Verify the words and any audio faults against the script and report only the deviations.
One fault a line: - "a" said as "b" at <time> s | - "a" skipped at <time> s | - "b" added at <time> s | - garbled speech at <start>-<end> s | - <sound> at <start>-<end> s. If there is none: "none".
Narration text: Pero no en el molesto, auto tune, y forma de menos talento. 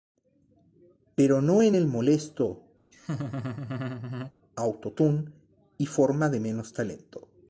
- laugh at 2.9-4.3 s